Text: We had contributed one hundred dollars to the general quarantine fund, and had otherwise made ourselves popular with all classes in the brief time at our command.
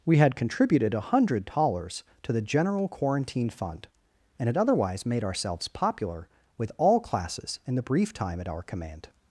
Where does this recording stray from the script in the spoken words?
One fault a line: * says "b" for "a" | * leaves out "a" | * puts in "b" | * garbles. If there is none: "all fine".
all fine